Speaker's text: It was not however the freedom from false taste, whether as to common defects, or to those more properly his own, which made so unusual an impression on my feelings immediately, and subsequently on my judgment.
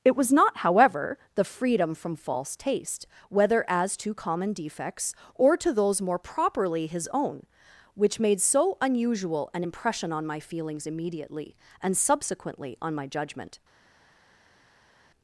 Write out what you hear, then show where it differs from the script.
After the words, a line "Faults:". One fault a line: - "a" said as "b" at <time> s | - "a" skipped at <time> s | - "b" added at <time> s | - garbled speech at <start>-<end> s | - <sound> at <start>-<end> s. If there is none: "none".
It was not however the freedom from false taste, whether as to common defects, or to those more properly his own, which made so unusual an impression on my feelings immediately, and subsequently on my judgment.
Faults:
none